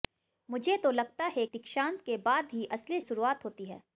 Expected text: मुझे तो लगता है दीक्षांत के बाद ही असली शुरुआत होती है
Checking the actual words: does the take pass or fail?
pass